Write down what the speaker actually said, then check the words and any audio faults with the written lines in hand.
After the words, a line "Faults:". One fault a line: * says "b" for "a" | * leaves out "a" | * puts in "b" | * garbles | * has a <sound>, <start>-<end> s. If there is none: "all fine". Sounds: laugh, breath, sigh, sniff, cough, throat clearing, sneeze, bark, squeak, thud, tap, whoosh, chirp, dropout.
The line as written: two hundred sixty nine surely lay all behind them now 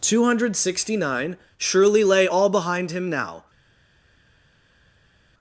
two hundred sixty nine surely lay all behind him now
Faults:
* says "him" for "them"